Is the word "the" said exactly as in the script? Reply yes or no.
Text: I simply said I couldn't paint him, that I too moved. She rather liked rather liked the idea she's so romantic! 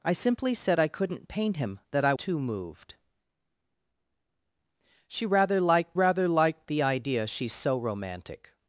yes